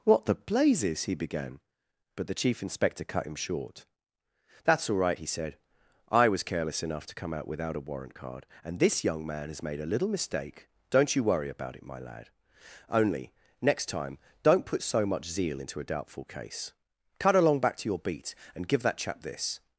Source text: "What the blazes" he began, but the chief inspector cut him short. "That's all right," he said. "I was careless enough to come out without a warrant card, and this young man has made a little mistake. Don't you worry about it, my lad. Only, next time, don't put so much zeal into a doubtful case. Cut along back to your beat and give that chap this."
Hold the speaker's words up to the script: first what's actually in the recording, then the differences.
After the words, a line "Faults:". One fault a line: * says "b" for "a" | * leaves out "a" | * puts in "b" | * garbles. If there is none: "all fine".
"What the blazes" he began, but the chief inspector cut him short. "That's all right," he said. "I was careless enough to come out without a warrant card, and this young man has made a little mistake. Don't you worry about it, my lad. Only, next time, don't put so much zeal into a doubtful case. Cut along back to your beat and give that chap this."
Faults:
all fine